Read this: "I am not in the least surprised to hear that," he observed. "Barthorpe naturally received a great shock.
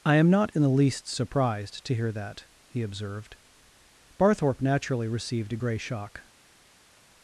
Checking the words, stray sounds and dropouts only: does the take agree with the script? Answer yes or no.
no